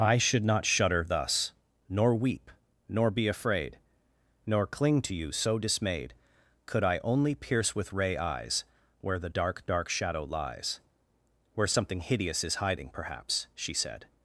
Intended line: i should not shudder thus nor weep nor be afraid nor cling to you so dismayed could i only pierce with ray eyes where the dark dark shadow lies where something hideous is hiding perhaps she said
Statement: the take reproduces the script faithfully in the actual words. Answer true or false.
true